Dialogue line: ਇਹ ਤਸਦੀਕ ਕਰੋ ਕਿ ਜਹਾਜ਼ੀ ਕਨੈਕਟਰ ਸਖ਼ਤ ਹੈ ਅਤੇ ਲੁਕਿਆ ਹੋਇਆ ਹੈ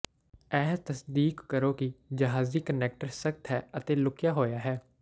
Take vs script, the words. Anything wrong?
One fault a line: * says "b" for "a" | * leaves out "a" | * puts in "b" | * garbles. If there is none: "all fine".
all fine